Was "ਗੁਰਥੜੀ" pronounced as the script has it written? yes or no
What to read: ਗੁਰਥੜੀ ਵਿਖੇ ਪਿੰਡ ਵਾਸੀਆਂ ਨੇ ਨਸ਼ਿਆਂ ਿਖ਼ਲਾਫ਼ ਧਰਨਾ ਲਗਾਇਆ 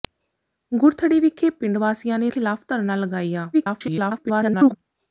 yes